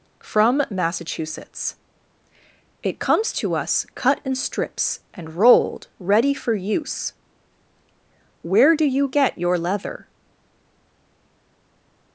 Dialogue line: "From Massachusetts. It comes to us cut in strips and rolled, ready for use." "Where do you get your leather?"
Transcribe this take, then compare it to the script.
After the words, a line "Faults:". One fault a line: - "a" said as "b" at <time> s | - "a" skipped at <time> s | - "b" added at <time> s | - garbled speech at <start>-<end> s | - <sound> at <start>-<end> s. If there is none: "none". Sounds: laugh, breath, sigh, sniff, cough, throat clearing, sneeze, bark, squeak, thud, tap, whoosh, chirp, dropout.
"From Massachusetts. It comes to us cut in strips and rolled, ready for use." "Where do you get your leather?"
Faults:
none